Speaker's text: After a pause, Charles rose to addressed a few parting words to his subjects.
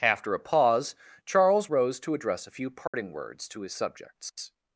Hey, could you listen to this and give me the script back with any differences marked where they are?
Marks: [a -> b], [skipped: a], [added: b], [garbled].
After a pause, Charles rose to [addressed -> address] a few parting words to his subjects.